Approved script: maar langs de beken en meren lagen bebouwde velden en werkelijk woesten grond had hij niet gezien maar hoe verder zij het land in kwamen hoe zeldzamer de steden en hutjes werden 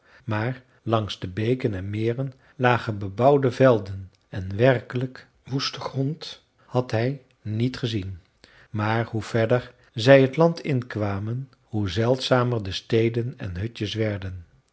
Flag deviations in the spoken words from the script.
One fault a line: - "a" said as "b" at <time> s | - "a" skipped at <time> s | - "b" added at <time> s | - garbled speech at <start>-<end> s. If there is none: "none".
none